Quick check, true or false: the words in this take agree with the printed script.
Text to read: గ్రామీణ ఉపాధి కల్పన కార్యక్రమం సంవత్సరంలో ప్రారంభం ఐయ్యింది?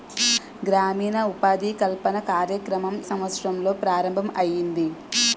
true